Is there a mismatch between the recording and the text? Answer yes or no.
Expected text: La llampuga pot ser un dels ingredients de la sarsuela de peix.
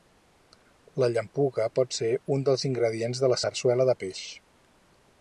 no